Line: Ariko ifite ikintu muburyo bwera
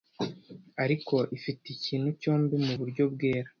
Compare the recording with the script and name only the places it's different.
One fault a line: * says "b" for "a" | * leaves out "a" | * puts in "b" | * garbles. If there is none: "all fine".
* puts in "cyombi"